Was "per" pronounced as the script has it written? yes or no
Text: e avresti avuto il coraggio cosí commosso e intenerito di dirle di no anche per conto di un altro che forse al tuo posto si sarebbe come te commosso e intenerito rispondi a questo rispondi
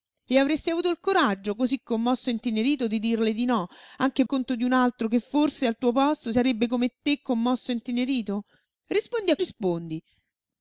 no